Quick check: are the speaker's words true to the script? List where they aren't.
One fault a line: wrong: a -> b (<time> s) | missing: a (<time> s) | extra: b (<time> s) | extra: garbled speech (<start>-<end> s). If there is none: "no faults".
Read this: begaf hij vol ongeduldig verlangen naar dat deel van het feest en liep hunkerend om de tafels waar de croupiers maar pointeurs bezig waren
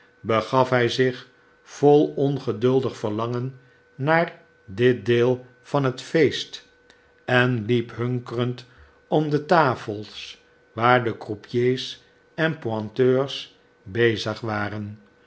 extra: zich (0.9 s)
wrong: dat -> dit (4.7 s)
wrong: maar -> en (12.3 s)